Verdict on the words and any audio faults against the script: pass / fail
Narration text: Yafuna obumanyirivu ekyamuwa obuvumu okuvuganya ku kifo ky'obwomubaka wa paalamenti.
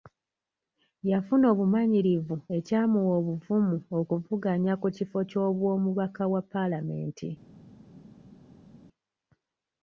pass